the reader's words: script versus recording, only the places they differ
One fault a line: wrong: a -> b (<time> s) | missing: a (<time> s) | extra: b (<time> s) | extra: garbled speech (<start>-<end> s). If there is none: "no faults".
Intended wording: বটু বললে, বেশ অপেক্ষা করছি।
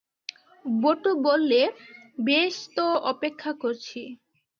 extra: তো (2.8 s)